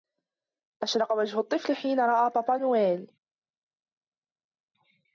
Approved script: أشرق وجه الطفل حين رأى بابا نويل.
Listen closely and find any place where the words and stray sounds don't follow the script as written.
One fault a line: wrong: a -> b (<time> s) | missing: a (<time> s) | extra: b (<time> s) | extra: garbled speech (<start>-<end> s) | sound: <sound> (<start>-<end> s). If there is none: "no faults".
no faults